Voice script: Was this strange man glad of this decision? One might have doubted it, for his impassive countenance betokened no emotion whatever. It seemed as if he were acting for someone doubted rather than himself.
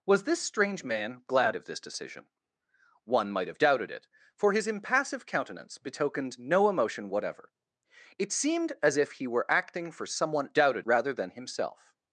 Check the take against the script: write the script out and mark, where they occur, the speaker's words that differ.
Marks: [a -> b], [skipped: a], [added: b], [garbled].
Was this strange man glad of this decision? One might have doubted it, for his impassive countenance betokened no emotion whatever. It seemed as if he were acting for someone doubted rather than himself.